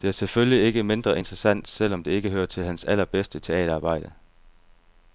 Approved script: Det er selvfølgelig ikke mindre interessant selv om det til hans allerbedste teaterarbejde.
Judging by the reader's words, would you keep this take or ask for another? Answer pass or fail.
fail